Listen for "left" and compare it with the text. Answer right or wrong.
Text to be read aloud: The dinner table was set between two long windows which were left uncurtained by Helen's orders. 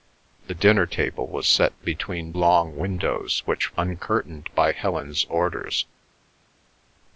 wrong